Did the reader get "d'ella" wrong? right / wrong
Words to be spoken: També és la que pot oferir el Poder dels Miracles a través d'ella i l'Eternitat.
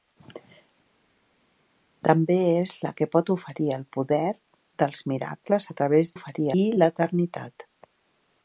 wrong